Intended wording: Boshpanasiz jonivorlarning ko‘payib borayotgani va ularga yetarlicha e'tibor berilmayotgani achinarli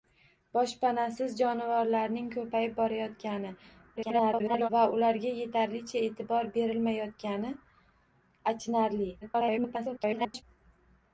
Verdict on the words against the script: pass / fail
fail